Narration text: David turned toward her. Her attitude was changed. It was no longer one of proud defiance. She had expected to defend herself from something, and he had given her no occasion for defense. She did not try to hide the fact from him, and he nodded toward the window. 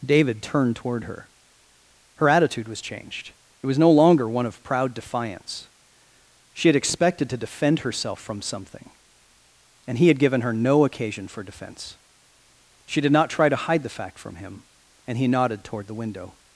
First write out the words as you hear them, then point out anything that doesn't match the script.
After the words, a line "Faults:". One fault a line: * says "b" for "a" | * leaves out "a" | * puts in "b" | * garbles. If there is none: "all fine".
David turned toward her. Her attitude was changed. It was no longer one of proud defiance. She had expected to defend herself from something, and he had given her no occasion for defense. She did not try to hide the fact from him, and he nodded toward the window.
Faults:
all fine